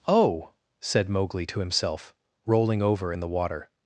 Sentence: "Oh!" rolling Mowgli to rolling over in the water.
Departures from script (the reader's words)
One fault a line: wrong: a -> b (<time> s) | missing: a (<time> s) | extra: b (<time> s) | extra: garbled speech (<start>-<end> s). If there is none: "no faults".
wrong: rolling -> said (0.8 s)
extra: himself (1.6 s)